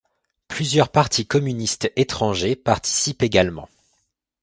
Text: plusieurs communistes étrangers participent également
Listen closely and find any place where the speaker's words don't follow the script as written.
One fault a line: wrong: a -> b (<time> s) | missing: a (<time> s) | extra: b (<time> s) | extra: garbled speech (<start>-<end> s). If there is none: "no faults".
extra: partis (0.9 s)